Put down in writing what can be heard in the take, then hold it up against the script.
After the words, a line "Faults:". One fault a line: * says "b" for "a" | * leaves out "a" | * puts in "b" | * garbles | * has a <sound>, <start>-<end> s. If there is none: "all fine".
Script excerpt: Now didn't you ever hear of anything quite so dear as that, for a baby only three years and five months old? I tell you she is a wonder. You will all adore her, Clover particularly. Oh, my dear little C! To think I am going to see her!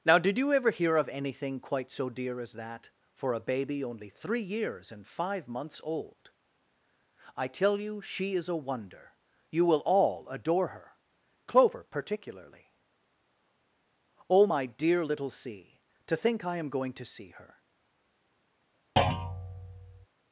Now did you ever hear of anything quite so dear as that, for a baby only three years and five months old? I tell you she is a wonder. You will all adore her, Clover particularly. Oh, my dear little C! To think I am going to see her!
Faults:
* says "did" for "didn't"
* has a thud, 19.0-20.1 s